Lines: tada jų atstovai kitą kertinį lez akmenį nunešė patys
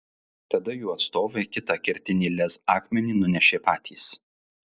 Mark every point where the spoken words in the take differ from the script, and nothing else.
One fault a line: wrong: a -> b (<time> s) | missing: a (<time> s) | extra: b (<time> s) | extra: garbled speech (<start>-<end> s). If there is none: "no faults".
no faults